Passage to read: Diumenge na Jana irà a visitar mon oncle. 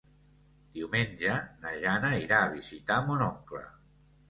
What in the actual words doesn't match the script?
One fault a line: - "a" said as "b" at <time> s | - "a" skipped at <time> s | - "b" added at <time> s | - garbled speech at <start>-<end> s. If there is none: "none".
none